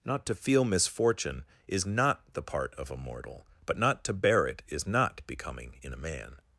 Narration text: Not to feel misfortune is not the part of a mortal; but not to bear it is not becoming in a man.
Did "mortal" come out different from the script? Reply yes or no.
no